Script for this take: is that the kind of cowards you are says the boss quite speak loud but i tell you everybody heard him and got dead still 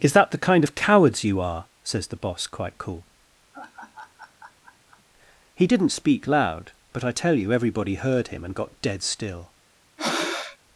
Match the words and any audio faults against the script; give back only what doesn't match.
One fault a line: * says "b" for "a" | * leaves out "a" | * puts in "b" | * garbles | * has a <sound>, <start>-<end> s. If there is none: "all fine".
* puts in "cool he didn't"
* has a laugh, 3.5-5.0 s
* has a breath, 10.0-10.6 s